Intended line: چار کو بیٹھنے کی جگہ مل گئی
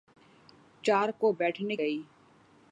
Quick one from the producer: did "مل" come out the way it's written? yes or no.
no